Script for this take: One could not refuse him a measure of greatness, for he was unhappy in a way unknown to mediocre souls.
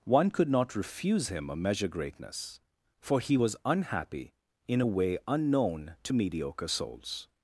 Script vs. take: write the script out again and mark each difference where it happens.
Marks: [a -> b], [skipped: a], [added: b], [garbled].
One could not refuse him a measure [skipped: of] greatness, for he was unhappy in a way unknown to mediocre souls.